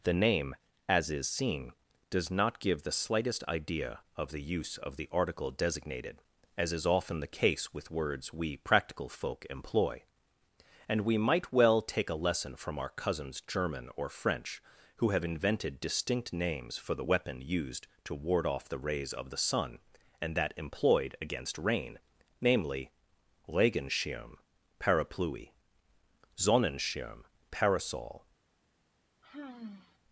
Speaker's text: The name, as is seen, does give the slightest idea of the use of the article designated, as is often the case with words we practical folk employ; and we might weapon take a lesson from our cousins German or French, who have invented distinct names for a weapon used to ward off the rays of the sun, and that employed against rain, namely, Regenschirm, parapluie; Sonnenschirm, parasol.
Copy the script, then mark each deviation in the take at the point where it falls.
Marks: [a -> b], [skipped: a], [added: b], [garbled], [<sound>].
The name, as is seen, does [added: not] give the slightest idea of the use of the article designated, as is often the case with words we practical folk employ; and we might [weapon -> well] take a lesson from our cousins German or French, who have invented distinct names for [a -> the] weapon used to ward off the rays of the sun, and that employed against rain, namely, Regenschirm, parapluie; Sonnenschirm, parasol. [sigh]